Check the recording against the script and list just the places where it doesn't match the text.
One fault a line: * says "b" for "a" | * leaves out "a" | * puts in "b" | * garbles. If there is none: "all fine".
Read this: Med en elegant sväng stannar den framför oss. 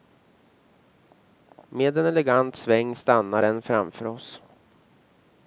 all fine